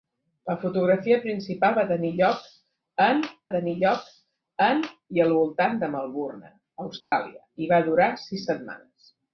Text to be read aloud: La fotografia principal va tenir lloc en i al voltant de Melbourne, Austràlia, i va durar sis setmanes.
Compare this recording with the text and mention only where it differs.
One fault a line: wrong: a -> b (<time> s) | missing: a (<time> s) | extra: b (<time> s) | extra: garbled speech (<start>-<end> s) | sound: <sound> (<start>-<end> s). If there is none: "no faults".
extra: tenir lloc en (3.5 s)
sound: dropout (7.0-7.1 s)